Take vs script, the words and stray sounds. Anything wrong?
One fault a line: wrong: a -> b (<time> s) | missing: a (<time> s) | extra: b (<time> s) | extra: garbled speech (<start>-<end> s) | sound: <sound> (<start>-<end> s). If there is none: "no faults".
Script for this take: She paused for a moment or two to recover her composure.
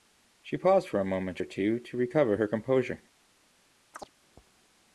sound: chirp (3.9-4.1 s)